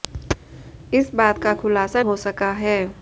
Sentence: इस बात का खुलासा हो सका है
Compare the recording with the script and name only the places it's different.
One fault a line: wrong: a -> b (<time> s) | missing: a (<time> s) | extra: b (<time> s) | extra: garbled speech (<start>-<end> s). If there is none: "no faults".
no faults